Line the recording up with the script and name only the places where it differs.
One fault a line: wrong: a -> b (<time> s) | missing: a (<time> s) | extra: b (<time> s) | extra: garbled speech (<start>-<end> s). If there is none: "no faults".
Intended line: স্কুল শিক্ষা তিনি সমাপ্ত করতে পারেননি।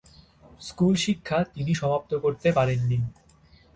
no faults